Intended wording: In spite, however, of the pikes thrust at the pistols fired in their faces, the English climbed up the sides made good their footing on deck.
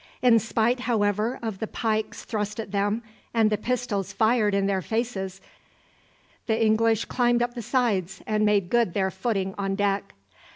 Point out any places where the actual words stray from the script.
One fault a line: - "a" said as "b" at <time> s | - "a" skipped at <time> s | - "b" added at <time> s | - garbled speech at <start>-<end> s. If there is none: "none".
- "them and" added at 2.7 s
- "and" added at 8.2 s